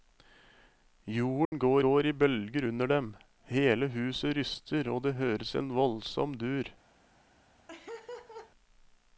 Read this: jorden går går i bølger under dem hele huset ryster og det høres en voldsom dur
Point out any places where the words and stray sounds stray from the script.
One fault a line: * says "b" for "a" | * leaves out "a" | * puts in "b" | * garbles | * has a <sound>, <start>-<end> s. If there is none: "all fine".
* has a dropout, 1.4-1.5 s
* has a laugh, 7.7-8.5 s